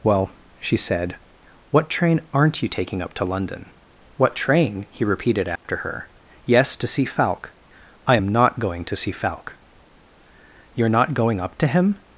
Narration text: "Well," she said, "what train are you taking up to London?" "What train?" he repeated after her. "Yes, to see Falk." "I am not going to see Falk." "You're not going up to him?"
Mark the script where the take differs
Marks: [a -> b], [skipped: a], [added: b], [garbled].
"Well," she said, "what train [are -> aren't] you taking up to London?" "What train?" he repeated after her. "Yes, to see Falk." "I am not going to see Falk." "You're not going up to him?"